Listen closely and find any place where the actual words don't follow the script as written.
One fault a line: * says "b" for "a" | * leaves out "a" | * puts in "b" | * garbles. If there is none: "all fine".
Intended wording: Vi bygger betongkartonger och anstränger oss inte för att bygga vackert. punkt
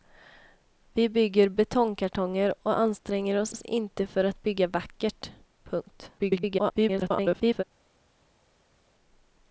* puts in "oss"
* garbles